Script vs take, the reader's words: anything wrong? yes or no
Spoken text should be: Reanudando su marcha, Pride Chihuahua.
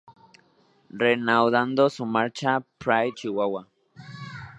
no